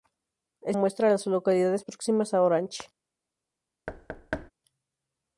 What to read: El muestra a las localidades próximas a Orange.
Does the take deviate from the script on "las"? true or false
false